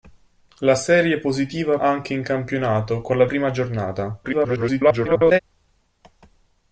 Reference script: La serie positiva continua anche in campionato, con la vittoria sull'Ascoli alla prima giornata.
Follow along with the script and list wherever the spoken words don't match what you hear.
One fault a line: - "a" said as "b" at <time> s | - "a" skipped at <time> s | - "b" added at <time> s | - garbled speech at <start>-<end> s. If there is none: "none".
- "continua" skipped at 1.8 s
- "vittoria sull'Ascoli alla" skipped at 3.3 s
- garbled speech at 4.2-5.4 s